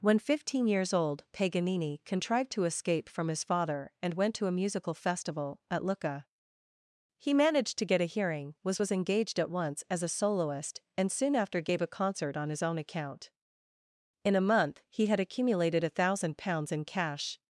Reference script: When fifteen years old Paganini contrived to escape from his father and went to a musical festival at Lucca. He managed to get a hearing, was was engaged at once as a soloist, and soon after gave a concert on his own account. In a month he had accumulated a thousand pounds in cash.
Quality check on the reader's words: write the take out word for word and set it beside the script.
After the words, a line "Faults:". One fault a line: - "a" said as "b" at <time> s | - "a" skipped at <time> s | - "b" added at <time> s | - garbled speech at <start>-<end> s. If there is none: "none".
When fifteen years old Paganini contrived to escape from his father and went to a musical festival at Lucca. He managed to get a hearing, was was engaged at once as a soloist, and soon after gave a concert on his own account. In a month he had accumulated a thousand pounds in cash.
Faults:
none